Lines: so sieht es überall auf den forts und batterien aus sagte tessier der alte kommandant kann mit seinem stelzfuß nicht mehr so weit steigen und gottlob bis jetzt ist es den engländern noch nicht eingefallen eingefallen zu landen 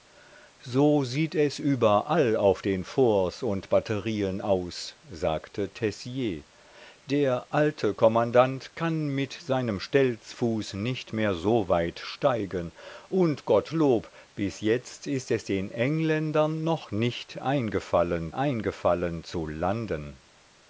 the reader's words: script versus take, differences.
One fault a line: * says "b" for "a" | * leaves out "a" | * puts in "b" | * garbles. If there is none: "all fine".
all fine